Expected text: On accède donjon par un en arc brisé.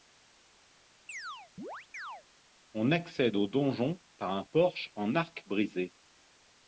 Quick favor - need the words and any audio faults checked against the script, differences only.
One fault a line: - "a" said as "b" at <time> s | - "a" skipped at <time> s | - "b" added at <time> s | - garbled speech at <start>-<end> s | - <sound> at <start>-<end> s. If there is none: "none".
- chirp at 1.1-2.2 s
- "au" added at 3.4 s
- "porche" added at 4.4 s